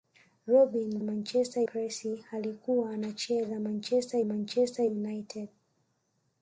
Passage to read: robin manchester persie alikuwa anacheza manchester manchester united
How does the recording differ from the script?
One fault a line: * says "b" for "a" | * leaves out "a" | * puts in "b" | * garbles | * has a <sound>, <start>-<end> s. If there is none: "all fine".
all fine